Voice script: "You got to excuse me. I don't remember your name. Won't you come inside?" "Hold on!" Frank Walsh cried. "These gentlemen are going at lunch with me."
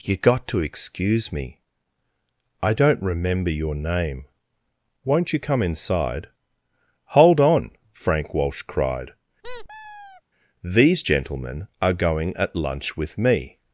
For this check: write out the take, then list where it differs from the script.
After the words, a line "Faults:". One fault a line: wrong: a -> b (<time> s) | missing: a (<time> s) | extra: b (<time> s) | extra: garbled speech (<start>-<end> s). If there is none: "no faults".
"You got to excuse me. I don't remember your name. Won't you come inside?" "Hold on!" Frank Walsh cried. "These gentlemen are going at lunch with me."
Faults:
no faults